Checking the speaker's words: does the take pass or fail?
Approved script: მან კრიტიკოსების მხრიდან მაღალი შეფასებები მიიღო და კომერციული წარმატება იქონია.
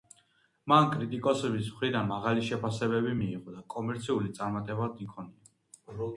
pass